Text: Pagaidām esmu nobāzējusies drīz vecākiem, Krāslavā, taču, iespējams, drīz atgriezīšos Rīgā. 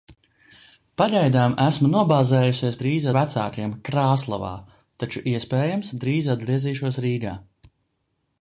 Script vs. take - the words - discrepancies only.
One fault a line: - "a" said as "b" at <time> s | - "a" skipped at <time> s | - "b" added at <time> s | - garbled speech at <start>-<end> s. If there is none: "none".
none